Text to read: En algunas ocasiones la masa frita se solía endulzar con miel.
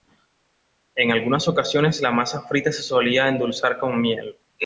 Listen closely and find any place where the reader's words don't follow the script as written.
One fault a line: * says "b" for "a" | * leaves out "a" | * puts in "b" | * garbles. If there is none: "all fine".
all fine